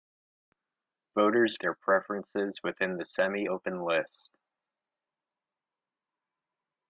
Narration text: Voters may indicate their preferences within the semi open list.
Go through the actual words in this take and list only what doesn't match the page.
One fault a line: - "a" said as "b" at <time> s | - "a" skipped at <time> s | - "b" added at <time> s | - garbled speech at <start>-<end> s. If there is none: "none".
- "may indicate" skipped at 1.6 s